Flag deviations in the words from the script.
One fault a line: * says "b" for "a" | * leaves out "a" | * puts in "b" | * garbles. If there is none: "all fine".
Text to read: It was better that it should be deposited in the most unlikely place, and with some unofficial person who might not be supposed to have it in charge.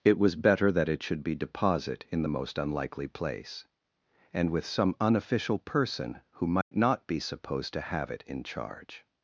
* says "deposit" for "deposited"